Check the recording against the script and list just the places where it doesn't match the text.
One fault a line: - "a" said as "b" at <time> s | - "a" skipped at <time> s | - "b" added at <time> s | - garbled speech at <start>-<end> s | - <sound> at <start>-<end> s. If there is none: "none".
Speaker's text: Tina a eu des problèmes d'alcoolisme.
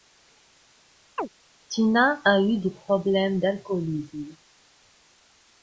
- chirp at 1.2-1.3 s